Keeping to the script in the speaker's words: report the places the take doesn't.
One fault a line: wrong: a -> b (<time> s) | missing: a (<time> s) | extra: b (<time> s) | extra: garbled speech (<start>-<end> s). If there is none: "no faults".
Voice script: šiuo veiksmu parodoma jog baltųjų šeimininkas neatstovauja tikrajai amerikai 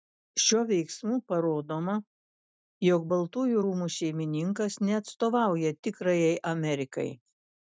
extra: rūmų (3.7 s)